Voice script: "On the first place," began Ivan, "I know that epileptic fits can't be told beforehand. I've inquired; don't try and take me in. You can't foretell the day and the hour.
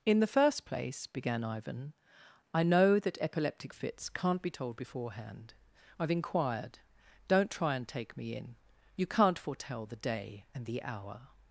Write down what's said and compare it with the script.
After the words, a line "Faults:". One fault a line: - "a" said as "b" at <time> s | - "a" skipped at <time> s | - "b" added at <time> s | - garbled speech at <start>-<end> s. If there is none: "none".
"In the first place," began Ivan, "I know that epileptic fits can't be told beforehand. I've inquired; don't try and take me in. You can't foretell the day and the hour.
Faults:
- "On" said as "In" at 0.1 s